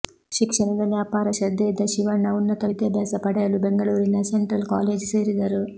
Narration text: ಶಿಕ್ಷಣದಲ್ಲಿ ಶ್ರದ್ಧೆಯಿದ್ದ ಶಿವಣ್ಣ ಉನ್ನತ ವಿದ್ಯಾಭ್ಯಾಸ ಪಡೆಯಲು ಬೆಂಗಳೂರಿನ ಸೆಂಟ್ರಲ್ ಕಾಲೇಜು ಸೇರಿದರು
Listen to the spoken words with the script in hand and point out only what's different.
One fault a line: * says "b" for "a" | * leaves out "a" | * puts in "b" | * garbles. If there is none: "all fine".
* puts in "ಅಪಾರ"